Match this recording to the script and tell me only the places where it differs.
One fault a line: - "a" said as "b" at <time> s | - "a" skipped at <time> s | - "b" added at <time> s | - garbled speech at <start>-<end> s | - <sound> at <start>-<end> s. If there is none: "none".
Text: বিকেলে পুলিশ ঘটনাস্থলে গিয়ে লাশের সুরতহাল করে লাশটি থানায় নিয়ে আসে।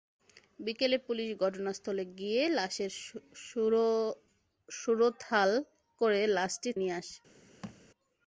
- "থানায়" skipped at 6.7 s
- thud at 7.6-7.8 s